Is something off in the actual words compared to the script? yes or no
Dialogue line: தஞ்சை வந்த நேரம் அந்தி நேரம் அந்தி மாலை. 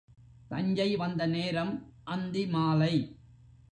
yes